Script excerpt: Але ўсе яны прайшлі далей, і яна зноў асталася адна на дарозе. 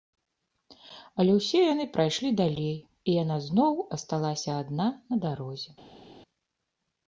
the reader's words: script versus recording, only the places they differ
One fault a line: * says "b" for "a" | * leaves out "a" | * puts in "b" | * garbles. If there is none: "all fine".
all fine